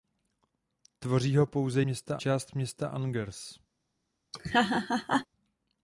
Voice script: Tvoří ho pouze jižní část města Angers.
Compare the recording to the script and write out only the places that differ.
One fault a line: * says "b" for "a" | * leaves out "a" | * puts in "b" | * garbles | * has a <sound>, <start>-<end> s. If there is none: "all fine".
* says "města" for "jižní"
* has a laugh, 4.3-5.3 s